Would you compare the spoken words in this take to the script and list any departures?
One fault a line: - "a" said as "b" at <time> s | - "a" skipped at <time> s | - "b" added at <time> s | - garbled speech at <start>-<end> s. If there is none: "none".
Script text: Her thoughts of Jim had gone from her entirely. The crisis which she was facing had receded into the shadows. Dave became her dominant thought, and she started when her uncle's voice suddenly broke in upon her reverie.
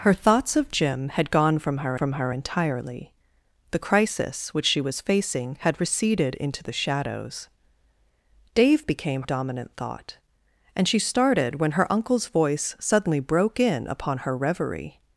- "from her" added at 1.9 s
- "her" skipped at 9.2 s